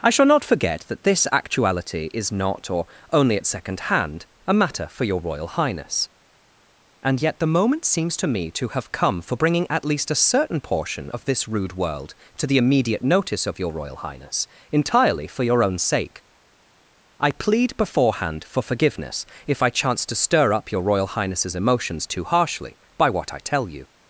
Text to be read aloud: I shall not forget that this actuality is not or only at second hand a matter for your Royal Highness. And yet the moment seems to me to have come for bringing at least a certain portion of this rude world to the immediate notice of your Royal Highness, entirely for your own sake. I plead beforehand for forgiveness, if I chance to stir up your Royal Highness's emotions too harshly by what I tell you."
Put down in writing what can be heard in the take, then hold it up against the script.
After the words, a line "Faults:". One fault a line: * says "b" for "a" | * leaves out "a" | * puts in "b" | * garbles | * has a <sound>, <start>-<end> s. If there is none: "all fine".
I shall not forget that this actuality is not or only at second hand a matter for your Royal Highness. And yet the moment seems to me to have come for bringing at least a certain portion of this rude world to the immediate notice of your Royal Highness, entirely for your own sake. I plead beforehand for forgiveness, if I chance to stir up your Royal Highness's emotions too harshly by what I tell you."
Faults:
all fine